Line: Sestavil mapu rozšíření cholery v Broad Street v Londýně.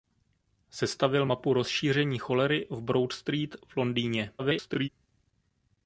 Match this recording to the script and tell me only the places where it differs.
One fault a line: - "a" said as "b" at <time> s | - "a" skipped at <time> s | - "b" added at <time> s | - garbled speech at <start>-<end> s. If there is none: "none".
- garbled speech at 4.4-4.9 s